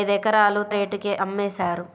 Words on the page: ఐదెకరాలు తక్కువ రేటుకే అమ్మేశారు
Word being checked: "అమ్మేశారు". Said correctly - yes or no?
yes